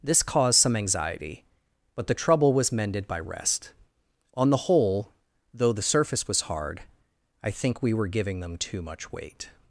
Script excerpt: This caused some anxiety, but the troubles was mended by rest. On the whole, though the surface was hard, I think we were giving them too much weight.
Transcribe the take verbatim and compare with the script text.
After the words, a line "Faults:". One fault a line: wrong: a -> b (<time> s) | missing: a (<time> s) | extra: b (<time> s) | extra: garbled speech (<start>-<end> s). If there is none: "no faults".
This caused some anxiety, but the trouble was mended by rest. On the whole, though the surface was hard, I think we were giving them too much weight.
Faults:
wrong: troubles -> trouble (2.1 s)